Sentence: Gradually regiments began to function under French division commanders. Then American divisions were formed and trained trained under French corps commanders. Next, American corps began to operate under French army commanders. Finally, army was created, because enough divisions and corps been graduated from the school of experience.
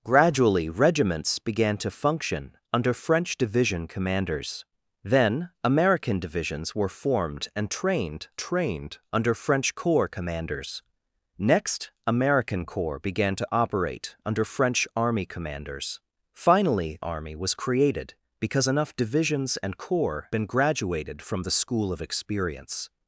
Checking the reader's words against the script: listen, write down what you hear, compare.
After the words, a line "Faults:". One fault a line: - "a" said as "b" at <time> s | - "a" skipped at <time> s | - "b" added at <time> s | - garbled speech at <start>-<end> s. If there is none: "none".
Gradually regiments began to function under French division commanders. Then American divisions were formed and trained trained under French corps commanders. Next, American corps began to operate under French army commanders. Finally, army was created, because enough divisions and corps been graduated from the school of experience.
Faults:
none